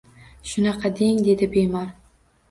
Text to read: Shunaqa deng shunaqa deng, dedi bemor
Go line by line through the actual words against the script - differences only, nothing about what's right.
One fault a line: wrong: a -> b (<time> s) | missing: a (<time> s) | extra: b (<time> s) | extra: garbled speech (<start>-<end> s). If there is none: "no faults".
missing: shunaqa deng (1.2 s)